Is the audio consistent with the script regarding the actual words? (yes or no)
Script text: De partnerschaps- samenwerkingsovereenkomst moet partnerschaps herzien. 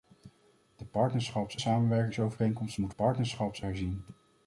yes